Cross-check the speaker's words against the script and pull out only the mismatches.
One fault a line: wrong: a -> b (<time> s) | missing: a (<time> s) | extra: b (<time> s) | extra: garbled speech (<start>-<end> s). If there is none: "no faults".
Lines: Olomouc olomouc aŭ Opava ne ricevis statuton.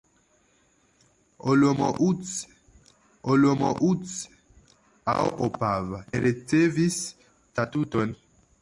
no faults